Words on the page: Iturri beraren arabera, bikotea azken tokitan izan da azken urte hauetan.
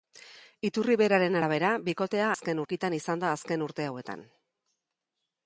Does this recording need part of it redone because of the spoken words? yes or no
no